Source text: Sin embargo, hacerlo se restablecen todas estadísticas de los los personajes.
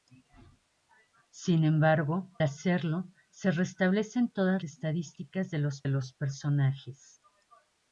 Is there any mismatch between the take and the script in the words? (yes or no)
no